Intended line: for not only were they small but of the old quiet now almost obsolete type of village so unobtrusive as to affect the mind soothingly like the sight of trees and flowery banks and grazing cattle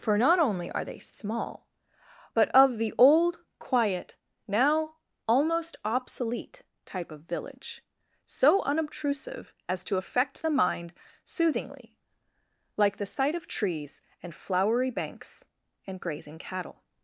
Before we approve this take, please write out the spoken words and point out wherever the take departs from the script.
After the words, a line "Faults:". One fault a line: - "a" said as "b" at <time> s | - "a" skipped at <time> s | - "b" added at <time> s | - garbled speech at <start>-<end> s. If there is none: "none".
for not only are they small but of the old quiet now almost obsolete type of village so unobtrusive as to affect the mind soothingly like the sight of trees and flowery banks and grazing cattle
Faults:
- "were" said as "are" at 0.7 s